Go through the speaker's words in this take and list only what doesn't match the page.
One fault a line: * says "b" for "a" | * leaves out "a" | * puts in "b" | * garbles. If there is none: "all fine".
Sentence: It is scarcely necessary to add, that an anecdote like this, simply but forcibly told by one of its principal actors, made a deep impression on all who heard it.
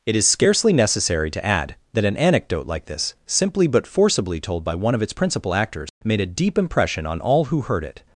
all fine